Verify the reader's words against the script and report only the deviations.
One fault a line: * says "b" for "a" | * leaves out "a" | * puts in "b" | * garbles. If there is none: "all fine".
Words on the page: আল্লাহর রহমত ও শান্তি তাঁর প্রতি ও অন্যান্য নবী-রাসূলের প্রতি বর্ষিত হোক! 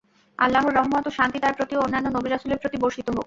all fine